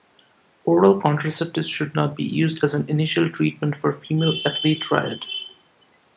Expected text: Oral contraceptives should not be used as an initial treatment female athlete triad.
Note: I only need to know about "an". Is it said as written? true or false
true